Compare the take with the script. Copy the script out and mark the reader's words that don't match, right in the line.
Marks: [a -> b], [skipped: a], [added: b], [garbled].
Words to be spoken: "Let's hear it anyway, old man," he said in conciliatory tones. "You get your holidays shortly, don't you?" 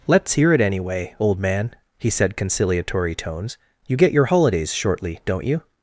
"Let's hear it anyway, old man," he said [skipped: in] conciliatory tones. "You get your holidays shortly, don't you?"